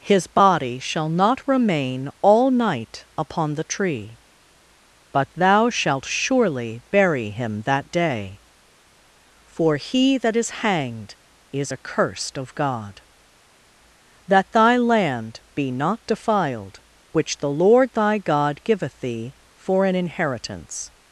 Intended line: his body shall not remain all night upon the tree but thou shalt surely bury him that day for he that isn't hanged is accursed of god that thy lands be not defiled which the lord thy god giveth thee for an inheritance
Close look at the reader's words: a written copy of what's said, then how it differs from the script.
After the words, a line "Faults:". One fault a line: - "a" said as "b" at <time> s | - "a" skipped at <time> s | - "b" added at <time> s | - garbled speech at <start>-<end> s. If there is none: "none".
his body shall not remain all night upon the tree but thou shalt surely bury him that day for he that is hanged is accursed of god that thy land be not defiled which the lord thy god giveth thee for an inheritance
Faults:
- "isn't" said as "is" at 10.3 s
- "lands" said as "land" at 14.8 s